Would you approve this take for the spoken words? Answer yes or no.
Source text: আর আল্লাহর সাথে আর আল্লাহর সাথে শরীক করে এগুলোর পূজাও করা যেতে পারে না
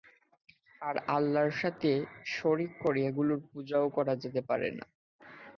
no